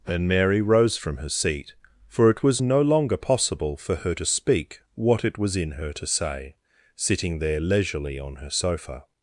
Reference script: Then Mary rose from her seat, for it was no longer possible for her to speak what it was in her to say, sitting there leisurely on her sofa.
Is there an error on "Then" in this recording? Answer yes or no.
yes